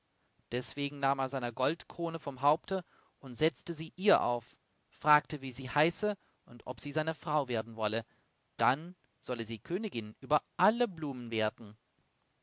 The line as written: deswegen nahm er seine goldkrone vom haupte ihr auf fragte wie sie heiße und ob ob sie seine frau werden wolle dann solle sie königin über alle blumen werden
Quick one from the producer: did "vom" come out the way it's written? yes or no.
yes